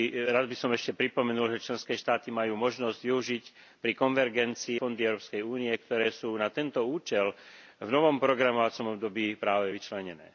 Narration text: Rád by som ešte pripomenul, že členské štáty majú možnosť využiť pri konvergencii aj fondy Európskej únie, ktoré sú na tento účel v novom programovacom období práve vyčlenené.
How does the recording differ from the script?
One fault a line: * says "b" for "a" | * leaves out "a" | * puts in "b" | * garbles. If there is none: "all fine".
* leaves out "aj"